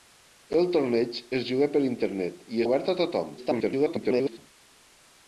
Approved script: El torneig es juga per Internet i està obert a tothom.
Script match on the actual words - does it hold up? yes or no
no